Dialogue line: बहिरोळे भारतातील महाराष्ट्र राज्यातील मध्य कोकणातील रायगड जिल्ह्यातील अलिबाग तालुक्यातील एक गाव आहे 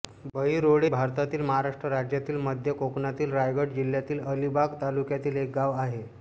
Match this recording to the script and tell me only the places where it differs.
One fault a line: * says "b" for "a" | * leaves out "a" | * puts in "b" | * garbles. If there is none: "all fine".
all fine